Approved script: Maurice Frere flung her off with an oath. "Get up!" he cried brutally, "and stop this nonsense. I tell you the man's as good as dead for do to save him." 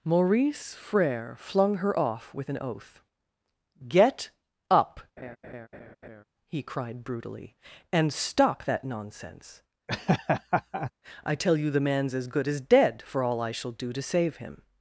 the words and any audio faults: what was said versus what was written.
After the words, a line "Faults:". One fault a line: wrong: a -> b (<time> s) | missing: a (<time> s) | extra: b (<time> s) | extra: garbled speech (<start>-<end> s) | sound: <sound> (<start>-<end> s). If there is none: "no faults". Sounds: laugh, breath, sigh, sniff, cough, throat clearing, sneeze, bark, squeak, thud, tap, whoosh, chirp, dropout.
Maurice Frere flung her off with an oath. "Get up!" he cried brutally, "and stop that nonsense. I tell you the man's as good as dead for all I shall do to save him."
Faults:
sound: laugh (5.2-6.2 s)
wrong: this -> that (8.7 s)
sound: laugh (9.9-10.9 s)
extra: all I shall (13.2 s)